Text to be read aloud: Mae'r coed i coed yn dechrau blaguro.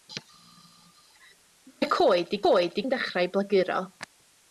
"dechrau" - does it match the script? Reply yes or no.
yes